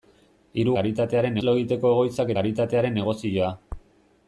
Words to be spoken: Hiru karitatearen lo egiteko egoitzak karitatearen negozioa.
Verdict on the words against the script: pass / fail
pass